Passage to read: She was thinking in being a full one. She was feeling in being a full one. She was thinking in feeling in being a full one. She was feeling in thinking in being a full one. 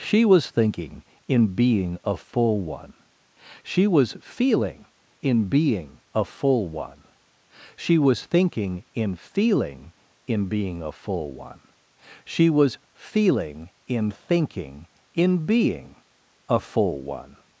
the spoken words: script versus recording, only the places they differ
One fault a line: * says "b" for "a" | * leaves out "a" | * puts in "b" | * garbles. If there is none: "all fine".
all fine